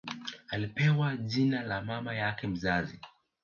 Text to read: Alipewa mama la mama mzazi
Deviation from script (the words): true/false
true